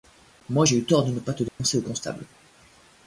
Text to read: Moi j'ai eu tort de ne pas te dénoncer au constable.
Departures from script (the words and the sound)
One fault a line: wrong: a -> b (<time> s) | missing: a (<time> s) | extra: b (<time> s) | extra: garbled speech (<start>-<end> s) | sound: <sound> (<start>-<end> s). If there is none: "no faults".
sound: dropout (1.5-1.6 s)